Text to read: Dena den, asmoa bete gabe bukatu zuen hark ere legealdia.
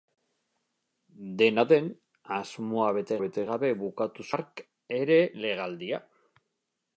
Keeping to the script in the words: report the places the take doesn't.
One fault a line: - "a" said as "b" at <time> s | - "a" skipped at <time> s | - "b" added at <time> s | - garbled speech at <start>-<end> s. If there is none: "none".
- "bete" added at 3.2 s
- "zuen" skipped at 4.3 s